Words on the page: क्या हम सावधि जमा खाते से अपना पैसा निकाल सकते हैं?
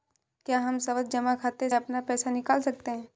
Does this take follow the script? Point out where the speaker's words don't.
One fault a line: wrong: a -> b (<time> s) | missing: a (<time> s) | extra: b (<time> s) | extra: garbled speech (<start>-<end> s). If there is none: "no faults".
missing: से (1.7 s)